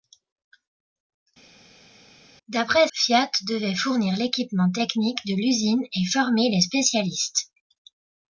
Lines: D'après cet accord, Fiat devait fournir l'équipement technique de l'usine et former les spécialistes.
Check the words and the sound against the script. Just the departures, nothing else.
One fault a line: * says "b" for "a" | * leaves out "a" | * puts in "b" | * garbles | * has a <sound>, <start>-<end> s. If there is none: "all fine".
* leaves out "cet accord"